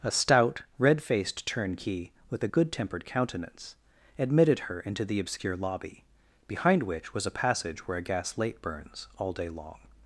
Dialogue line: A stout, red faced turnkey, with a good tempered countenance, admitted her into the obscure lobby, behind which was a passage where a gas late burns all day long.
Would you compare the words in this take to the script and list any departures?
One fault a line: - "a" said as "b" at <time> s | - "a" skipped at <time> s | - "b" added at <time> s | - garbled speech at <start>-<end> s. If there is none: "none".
none